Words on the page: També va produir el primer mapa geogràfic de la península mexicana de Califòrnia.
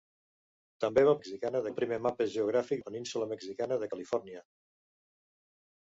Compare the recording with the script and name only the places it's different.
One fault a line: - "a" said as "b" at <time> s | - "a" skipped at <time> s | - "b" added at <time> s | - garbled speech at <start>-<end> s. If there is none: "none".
- "produir" said as "mexicana" at 1.2 s
- "de" skipped at 2.8 s